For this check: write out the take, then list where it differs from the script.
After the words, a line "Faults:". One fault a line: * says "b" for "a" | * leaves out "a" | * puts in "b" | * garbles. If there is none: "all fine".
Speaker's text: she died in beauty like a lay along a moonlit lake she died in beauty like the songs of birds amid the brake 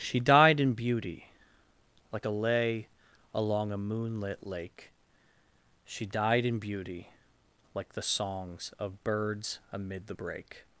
she died in beauty like a lay along a moonlit lake she died in beauty like the songs of birds amid the brake
Faults:
all fine